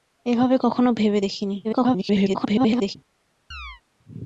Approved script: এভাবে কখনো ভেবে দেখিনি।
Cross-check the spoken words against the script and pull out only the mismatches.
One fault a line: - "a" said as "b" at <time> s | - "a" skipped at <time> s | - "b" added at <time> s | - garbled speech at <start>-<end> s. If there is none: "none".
- garbled speech at 1.6-3.0 s